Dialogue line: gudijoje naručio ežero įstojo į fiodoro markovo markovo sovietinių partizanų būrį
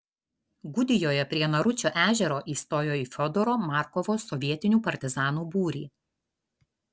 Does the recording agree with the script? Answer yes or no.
no